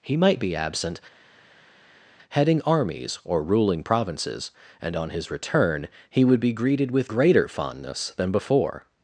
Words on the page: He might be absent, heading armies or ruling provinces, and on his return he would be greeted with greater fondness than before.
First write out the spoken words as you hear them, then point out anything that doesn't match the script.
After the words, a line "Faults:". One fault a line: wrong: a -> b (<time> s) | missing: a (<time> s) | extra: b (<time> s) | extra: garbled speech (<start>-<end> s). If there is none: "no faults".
He might be absent, heading armies or ruling provinces, and on his return he would be greeted with greater fondness than before.
Faults:
no faults